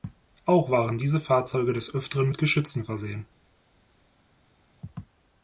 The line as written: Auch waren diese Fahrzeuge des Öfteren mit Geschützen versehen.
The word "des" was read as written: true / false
true